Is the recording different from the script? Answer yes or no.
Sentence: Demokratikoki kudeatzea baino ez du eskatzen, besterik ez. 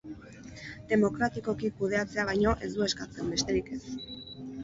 no